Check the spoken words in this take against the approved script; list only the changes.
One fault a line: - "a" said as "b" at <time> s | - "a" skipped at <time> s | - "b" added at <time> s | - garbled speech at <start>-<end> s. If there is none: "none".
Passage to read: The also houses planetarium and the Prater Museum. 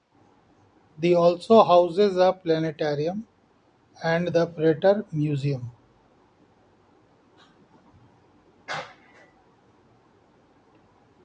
- "a" added at 2.2 s